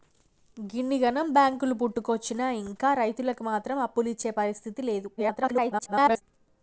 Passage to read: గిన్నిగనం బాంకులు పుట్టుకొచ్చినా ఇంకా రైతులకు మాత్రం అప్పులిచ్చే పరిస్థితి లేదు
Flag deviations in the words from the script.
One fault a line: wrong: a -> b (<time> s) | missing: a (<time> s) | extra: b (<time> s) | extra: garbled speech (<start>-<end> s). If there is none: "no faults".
extra: garbled speech (5.2-6.2 s)